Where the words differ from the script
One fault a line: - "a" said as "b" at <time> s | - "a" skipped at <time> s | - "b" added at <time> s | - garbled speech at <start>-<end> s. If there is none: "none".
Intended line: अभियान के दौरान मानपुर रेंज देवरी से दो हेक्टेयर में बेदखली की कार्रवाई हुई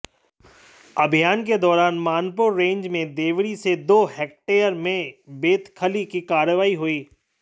- "में" added at 3.0 s